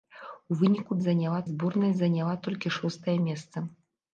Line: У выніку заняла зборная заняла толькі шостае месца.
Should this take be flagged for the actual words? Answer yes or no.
no